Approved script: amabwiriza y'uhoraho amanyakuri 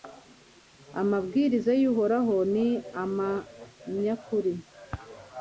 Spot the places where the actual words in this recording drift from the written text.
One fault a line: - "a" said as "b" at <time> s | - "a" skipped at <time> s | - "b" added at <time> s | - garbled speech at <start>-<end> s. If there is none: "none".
- "ni" added at 2.5 s